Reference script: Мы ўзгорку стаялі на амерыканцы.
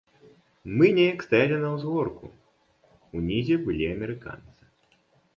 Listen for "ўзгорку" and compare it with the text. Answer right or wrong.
wrong